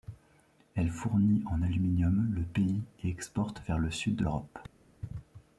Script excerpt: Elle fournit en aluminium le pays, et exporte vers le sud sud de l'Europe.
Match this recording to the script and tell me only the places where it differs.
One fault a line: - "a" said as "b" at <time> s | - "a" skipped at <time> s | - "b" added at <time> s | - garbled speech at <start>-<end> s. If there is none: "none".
- "sud" skipped at 4.2 s